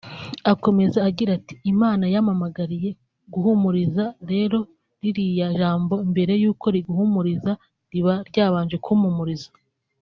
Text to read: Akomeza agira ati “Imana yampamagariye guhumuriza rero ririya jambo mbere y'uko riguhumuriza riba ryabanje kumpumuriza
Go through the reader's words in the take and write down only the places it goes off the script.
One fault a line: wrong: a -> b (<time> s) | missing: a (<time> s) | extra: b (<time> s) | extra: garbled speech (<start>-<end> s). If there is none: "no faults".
no faults